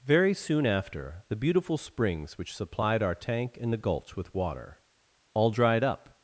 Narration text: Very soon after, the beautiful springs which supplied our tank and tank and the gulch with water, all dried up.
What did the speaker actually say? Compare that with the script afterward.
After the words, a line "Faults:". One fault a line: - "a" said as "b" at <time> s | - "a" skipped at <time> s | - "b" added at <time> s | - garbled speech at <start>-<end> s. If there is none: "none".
Very soon after, the beautiful springs which supplied our tank and the gulch with water, all dried up.
Faults:
- "tank and" skipped at 3.7 s